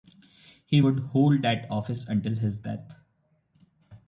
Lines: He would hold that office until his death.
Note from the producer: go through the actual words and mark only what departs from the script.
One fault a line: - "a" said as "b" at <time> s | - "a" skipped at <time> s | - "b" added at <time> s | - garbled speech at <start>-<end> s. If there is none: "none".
none